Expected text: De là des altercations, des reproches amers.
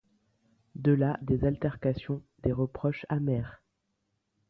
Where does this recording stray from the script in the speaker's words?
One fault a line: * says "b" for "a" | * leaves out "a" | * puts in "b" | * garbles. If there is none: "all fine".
all fine